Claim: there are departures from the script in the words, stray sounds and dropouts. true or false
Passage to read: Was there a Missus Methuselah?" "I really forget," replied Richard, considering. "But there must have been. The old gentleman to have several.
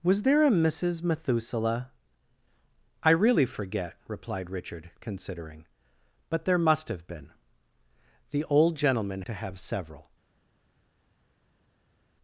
false